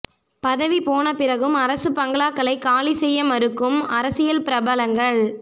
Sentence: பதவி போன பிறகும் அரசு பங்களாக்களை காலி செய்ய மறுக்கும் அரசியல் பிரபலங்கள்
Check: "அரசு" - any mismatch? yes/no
no